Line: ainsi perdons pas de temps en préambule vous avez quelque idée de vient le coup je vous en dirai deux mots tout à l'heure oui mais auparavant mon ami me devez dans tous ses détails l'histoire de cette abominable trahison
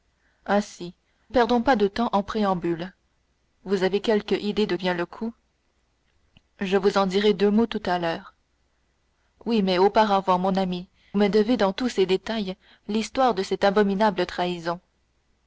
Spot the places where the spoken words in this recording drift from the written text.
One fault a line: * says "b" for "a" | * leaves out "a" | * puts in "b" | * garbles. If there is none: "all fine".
all fine